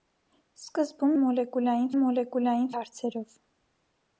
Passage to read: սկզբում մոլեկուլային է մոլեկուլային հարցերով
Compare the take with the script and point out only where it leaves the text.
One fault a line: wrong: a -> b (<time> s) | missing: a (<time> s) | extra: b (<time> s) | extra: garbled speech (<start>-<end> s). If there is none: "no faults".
no faults